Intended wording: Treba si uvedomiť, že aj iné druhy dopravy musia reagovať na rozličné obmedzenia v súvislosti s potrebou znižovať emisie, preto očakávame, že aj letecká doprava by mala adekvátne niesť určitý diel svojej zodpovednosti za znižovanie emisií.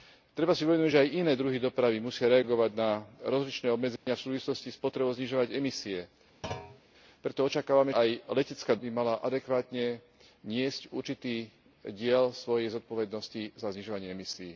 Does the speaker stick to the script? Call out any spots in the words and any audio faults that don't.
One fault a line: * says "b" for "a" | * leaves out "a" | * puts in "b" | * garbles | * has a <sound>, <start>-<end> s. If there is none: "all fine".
* has a dropout, 4.0-4.1 s
* has a thud, 6.4-6.8 s
* leaves out "že"
* leaves out "doprava"